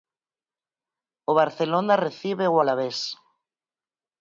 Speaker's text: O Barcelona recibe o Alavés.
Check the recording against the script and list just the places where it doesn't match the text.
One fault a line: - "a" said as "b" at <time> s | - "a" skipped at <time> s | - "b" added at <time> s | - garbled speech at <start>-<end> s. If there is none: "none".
none